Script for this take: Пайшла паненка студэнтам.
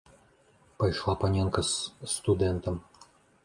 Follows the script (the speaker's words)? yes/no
no